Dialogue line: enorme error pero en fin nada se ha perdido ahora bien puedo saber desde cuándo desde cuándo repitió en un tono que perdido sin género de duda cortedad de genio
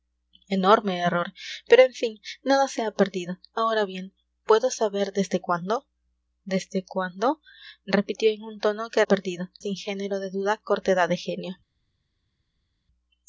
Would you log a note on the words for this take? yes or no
no